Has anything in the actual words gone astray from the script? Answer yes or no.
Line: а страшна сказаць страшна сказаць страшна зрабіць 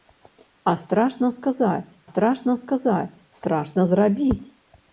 no